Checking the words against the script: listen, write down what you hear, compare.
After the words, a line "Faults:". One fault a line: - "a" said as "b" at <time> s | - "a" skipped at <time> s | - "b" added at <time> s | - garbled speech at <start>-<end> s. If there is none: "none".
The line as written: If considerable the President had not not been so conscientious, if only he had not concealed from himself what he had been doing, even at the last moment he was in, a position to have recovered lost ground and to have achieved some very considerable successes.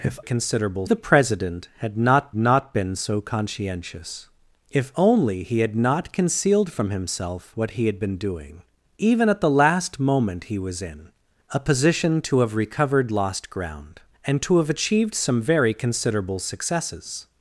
If considerable the President had not not been so conscientious, if only he had not concealed from himself what he had been doing, even at the last moment he was in, a position to have recovered lost ground and to have achieved some very considerable successes.
Faults:
none